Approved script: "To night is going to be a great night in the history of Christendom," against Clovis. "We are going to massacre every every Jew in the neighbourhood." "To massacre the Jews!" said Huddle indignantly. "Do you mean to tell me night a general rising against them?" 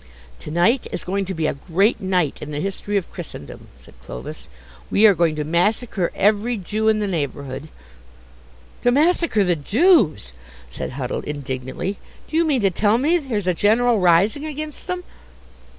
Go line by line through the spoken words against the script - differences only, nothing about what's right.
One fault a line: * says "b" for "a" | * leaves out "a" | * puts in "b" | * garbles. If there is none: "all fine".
* says "said" for "against"
* leaves out "every"
* says "there's" for "night"